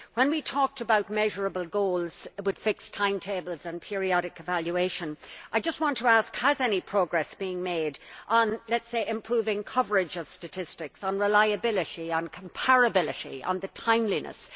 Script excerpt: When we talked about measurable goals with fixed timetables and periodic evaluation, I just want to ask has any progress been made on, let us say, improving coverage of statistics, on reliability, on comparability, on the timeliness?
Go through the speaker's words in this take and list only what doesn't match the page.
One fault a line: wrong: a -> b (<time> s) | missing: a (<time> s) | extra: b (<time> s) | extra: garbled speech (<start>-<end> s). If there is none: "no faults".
no faults